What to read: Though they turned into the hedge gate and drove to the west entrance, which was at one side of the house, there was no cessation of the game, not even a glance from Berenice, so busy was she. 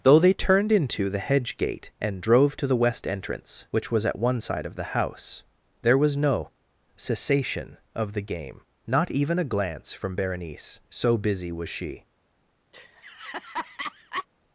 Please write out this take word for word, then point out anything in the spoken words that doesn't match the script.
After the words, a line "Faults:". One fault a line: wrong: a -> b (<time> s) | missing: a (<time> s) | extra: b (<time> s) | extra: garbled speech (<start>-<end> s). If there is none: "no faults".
Though they turned into the hedge gate and drove to the west entrance, which was at one side of the house, there was no cessation of the game, not even a glance from Berenice, so busy was she.
Faults:
no faults